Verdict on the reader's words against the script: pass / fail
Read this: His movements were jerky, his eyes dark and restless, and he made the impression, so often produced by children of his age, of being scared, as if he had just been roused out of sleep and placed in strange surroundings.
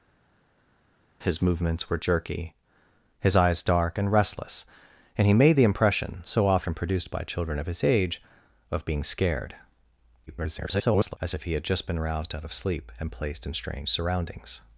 fail